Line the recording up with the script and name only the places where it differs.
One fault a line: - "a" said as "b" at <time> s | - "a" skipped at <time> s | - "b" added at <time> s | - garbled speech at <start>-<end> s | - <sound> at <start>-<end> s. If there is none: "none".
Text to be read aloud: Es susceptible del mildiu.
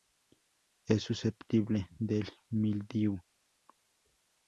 none